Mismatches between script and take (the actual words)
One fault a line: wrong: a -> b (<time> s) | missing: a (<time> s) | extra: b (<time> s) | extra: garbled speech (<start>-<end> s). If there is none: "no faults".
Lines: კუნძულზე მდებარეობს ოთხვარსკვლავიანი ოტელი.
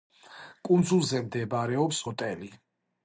missing: ოთხვარსკვლავიანი (2.0 s)